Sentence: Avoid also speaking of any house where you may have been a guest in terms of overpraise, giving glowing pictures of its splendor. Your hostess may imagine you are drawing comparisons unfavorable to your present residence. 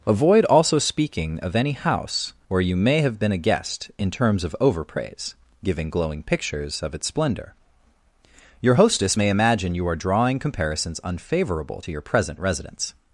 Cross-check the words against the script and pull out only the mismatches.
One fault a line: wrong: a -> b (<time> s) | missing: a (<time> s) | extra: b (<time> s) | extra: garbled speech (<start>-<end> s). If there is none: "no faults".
no faults